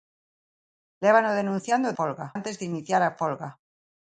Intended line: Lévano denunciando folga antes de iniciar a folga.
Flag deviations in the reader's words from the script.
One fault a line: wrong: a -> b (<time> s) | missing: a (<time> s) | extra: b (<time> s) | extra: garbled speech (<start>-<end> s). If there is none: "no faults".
no faults